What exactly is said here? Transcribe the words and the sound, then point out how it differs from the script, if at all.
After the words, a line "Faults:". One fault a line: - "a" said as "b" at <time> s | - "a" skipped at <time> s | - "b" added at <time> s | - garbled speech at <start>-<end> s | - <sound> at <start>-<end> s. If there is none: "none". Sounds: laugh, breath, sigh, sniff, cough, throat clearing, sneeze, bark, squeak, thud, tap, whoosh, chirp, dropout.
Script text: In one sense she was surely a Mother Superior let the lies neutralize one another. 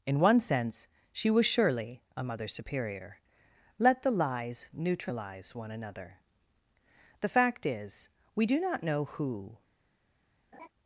In one sense she was surely a Mother Superior let the lies neutralize one another. The fact is, we do not know who
Faults:
- "The fact is we do not know who" added at 7.2 s
- laugh at 10.5-10.7 s